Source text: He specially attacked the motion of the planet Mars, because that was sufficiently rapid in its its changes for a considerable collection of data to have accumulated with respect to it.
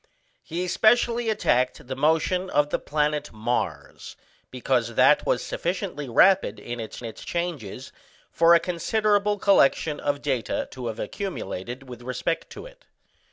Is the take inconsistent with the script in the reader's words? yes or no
no